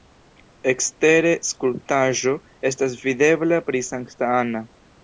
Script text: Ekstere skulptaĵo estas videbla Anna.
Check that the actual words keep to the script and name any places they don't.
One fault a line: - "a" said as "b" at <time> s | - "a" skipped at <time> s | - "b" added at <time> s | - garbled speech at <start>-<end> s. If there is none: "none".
- "pri Sankta" added at 3.7 s